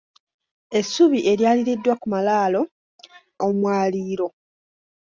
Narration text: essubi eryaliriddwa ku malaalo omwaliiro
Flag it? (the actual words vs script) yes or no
no